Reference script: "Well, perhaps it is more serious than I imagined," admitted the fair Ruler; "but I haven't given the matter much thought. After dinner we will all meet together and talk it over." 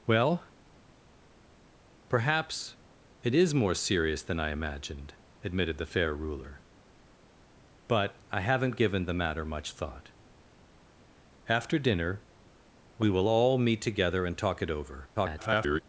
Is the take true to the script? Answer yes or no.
no